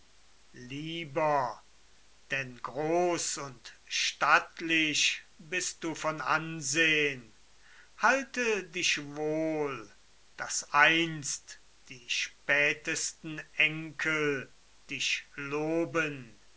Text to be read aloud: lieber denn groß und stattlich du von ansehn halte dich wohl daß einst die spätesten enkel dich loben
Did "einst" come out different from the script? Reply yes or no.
no